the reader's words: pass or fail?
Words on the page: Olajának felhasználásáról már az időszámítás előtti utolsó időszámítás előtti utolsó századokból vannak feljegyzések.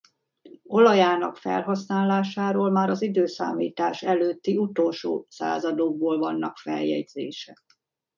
fail